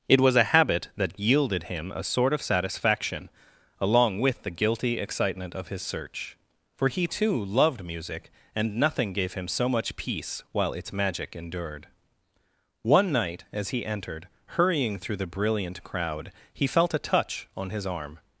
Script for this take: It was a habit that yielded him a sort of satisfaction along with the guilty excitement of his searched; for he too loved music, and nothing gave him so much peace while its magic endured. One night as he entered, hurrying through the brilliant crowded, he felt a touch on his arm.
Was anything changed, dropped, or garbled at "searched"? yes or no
yes